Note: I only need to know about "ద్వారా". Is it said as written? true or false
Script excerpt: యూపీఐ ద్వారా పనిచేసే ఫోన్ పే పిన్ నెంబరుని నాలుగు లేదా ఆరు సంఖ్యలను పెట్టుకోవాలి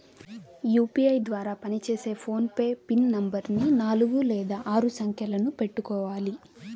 true